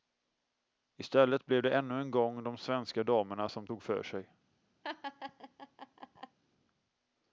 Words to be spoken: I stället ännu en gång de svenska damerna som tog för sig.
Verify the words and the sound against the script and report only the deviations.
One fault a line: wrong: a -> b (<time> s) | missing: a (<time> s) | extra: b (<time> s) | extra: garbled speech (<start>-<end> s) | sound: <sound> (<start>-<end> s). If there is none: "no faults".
extra: blev det (1.4 s)
sound: laugh (4.8-6.4 s)